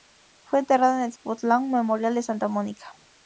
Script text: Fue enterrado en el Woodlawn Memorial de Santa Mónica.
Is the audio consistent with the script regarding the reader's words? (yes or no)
yes